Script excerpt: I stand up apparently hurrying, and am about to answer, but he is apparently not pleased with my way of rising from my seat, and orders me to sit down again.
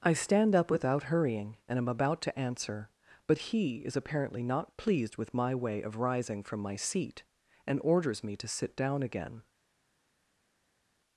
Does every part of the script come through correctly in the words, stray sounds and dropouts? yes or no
no